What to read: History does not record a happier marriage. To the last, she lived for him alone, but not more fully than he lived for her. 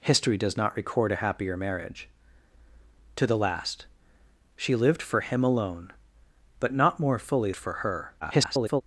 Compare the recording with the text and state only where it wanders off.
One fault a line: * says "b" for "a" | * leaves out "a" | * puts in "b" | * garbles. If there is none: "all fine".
* leaves out "than he lived"
* garbles